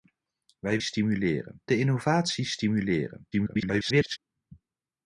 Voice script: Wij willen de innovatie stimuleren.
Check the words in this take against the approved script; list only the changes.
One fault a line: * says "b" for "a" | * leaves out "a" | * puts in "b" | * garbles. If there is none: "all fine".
* says "stimuleren" for "willen"
* garbles